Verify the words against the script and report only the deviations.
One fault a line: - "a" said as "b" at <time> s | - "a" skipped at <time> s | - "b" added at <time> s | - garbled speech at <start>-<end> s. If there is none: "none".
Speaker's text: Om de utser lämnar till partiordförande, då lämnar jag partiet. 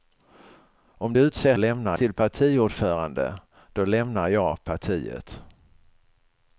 none